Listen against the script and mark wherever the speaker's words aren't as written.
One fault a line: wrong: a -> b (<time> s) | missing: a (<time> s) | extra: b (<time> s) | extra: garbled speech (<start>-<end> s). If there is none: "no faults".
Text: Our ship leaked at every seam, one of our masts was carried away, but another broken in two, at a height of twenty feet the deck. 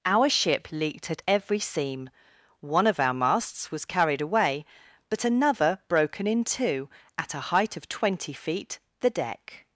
no faults